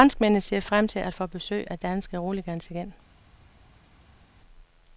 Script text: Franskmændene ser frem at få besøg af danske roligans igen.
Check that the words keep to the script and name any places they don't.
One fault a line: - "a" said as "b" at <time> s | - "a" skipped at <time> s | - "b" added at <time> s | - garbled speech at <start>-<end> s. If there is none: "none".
- "til" added at 0.9 s